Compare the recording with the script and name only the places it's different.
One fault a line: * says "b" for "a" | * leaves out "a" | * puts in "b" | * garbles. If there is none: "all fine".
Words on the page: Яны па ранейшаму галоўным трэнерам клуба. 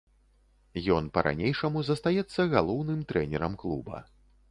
* says "Ён" for "Яны"
* puts in "застаецца"